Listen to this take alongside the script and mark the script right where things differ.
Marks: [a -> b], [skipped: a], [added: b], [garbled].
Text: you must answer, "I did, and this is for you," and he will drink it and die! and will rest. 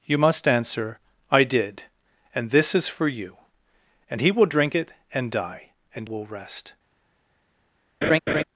you must answer, "I did, and this is for you," and he will drink it and die! and will rest.